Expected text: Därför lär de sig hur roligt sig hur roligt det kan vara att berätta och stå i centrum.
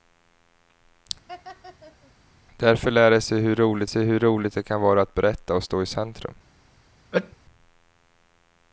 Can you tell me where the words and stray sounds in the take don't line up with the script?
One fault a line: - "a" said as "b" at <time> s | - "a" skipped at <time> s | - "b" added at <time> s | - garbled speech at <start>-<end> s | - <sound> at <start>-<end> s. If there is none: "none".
- laugh at 1.3-2.1 s
- sneeze at 7.1-7.4 s